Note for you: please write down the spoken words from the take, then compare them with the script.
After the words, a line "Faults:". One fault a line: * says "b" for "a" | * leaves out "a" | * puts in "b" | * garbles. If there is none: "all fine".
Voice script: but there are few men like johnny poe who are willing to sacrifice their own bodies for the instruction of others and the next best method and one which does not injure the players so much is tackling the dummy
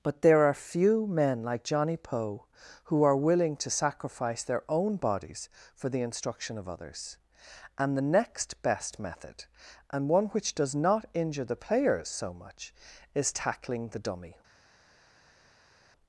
but there are few men like johnny poe who are willing to sacrifice their own bodies for the instruction of others and the next best method and one which does not injure the players so much is tackling the dummy
Faults:
all fine